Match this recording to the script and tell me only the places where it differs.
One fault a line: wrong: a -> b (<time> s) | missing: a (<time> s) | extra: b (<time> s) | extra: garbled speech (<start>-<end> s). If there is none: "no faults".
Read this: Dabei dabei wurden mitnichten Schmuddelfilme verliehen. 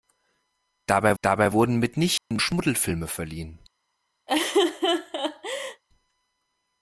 no faults